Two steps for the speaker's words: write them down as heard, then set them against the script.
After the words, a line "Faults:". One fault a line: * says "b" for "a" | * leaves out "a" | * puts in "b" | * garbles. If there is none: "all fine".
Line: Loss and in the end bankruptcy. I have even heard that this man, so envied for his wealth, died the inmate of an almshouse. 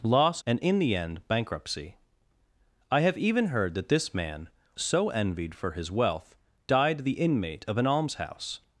Loss and in the end bankruptcy. I have even heard that this man, so envied for his wealth, died the inmate of an almshouse.
Faults:
all fine